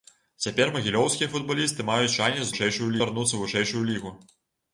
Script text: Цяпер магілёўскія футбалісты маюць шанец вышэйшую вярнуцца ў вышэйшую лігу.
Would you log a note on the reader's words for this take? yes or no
no